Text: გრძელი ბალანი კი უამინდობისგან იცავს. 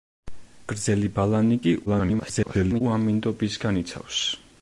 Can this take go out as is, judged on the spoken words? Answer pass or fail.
fail